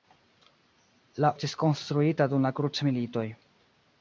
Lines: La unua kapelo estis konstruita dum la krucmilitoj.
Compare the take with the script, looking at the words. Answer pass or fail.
fail